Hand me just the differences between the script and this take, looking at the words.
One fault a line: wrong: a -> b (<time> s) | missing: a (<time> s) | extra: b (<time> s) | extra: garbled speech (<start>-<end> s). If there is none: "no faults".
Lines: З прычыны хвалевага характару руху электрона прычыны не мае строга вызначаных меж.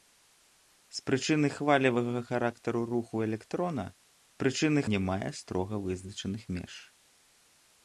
no faults